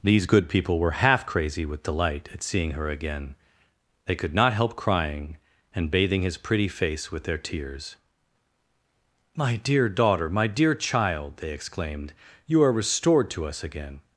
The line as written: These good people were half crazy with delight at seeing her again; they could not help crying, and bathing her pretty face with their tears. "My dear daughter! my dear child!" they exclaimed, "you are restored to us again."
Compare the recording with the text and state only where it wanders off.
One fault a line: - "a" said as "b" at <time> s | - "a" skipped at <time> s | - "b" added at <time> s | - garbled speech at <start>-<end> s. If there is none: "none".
- "her" said as "his" at 6.2 s